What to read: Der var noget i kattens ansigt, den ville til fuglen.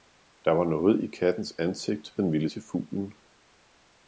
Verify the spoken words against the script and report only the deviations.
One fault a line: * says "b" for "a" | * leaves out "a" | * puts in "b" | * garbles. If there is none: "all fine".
all fine